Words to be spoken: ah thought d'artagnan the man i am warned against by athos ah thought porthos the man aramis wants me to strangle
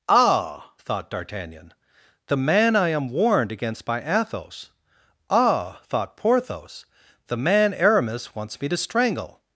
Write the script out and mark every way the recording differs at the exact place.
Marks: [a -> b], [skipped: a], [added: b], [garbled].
ah thought d'artagnan the man i am warned against by athos ah thought porthos the man aramis wants me to strangle